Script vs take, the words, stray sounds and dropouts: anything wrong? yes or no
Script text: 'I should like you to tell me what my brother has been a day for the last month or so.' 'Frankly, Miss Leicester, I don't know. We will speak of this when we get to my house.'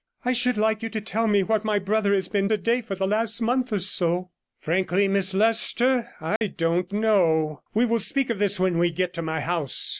yes